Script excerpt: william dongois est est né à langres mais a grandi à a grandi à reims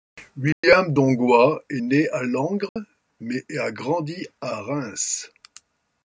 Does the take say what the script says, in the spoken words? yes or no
no